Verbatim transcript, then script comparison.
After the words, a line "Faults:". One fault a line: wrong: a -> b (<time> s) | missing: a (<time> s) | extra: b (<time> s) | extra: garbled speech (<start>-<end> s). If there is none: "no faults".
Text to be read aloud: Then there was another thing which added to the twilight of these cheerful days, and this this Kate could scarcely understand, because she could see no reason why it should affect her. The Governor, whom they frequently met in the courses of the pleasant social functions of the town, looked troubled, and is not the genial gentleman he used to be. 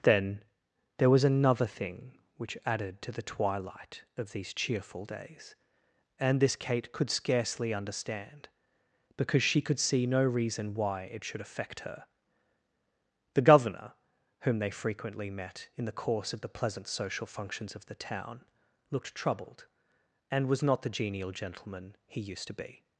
Then there was another thing which added to the twilight of these cheerful days, and this Kate could scarcely understand, because she could see no reason why it should affect her. The Governor, whom they frequently met in the course of the pleasant social functions of the town, looked troubled, and was not the genial gentleman he used to be.
Faults:
missing: this (6.5 s)
wrong: courses -> course (15.9 s)
wrong: is -> was (20.5 s)